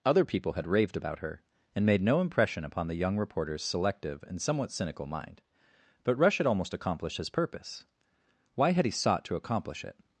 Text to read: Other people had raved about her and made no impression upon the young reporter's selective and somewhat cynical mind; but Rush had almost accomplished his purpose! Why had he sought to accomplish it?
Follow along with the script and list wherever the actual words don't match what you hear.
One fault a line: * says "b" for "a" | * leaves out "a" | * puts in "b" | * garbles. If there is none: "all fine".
all fine